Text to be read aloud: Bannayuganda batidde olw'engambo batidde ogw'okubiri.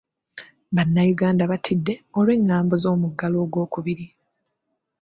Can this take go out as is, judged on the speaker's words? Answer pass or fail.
fail